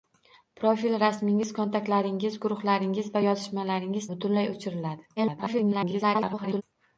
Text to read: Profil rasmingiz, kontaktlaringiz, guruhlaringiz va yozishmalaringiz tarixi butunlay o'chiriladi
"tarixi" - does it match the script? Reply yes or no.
no